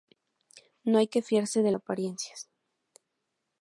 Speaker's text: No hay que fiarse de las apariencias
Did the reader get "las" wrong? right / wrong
wrong